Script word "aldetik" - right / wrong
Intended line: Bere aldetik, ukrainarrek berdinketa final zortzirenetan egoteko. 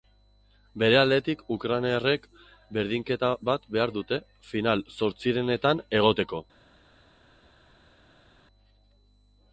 right